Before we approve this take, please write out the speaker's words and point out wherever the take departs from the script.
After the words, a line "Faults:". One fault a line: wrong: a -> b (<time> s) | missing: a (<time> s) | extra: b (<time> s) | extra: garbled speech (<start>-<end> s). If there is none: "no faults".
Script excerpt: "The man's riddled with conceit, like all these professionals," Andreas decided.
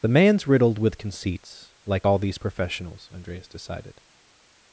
"The man's riddled with conceits, like all these professionals," Andreas decided.
Faults:
wrong: conceit -> conceits (1.0 s)